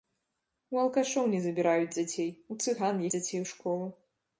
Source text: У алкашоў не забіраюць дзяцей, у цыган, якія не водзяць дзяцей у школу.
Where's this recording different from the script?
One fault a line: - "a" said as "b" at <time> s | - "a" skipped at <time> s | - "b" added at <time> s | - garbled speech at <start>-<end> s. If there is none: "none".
- "якія не водзяць" skipped at 3.0 s